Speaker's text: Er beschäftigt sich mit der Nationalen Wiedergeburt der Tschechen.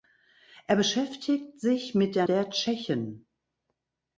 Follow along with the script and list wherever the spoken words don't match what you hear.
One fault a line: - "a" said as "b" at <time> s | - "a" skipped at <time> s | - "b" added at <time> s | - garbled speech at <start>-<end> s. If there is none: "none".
- "Nationalen Wiedergeburt" skipped at 2.3 s